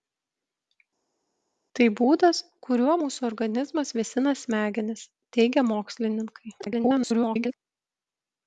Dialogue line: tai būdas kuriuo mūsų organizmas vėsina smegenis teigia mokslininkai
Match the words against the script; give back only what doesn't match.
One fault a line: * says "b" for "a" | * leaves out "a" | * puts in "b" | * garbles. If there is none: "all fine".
* garbles